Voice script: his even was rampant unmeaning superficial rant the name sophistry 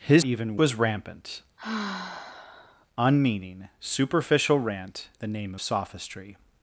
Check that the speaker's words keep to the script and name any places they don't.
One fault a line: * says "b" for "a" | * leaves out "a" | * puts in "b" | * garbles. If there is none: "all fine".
all fine